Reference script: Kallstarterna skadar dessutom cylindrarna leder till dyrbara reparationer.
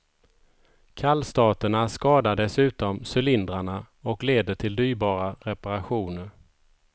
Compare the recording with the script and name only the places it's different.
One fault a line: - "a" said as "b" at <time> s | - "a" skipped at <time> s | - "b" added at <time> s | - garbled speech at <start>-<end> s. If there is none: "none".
- "och" added at 4.0 s